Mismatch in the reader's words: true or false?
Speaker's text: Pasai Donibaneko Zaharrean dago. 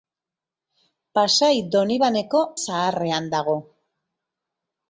false